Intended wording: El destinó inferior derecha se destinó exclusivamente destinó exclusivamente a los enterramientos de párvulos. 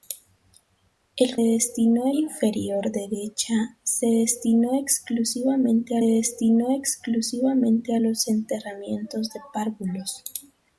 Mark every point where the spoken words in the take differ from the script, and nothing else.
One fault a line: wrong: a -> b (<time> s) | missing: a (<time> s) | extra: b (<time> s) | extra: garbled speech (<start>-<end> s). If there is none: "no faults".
no faults